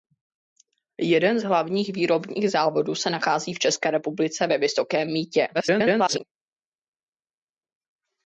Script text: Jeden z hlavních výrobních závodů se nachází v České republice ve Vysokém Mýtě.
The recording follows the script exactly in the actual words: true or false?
false